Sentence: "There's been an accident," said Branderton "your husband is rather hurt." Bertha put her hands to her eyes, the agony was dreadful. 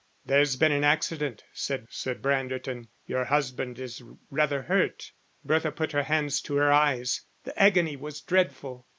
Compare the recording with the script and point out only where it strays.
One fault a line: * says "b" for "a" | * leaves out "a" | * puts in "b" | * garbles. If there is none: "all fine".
* puts in "said"